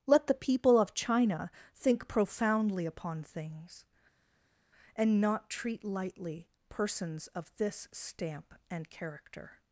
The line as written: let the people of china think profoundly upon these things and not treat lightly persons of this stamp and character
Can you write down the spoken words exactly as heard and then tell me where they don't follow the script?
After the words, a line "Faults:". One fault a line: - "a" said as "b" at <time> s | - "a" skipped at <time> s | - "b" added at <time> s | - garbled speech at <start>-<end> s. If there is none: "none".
let the people of china think profoundly upon things and not treat lightly persons of this stamp and character
Faults:
- "these" skipped at 3.2 s